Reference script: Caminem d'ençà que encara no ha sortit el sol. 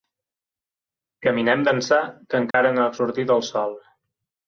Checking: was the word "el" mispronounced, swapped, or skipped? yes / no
no